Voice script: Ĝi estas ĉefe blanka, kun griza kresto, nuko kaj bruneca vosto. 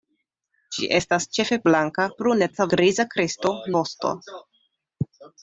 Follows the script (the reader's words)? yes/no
no